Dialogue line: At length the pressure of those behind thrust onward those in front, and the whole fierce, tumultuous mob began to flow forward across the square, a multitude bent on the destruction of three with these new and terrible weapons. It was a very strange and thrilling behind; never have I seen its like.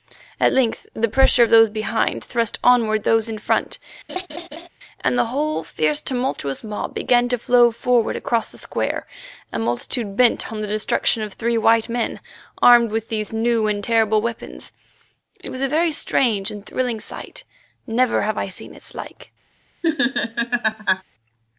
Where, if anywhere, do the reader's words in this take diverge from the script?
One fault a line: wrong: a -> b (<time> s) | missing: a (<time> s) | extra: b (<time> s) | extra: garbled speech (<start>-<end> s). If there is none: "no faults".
extra: white men armed (11.6 s)
wrong: behind -> sight (17.0 s)